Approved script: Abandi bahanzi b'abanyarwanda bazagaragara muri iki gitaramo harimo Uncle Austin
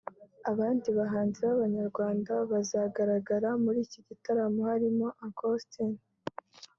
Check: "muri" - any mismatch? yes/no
no